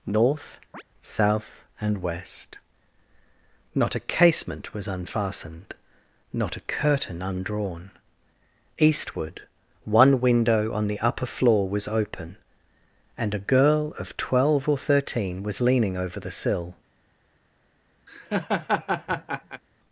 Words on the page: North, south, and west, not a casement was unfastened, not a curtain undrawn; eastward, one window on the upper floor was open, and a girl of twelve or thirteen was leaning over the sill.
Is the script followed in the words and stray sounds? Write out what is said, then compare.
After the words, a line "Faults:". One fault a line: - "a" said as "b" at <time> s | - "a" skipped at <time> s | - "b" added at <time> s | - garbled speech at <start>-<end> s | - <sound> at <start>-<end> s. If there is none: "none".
North, south, and west, not a casement was unfastened, not a curtain undrawn; eastward, one window on the upper floor was open, and a girl of twelve or thirteen was leaning over the sill.
Faults:
- chirp at 0.7-0.8 s
- laugh at 18.1-19.6 s